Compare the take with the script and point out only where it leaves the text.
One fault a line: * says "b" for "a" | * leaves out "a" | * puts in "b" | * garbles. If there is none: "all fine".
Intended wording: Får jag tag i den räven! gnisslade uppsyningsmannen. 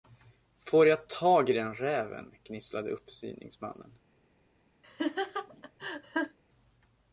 all fine